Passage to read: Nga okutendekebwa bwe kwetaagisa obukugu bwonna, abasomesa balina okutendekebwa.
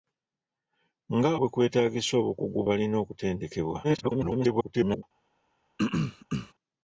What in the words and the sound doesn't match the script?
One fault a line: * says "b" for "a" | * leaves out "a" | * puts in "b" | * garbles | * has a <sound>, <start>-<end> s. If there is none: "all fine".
* leaves out "okutendekebwa"
* leaves out "bwonna abasomesa"
* garbles
* has a throat clearing, 5.8-6.5 s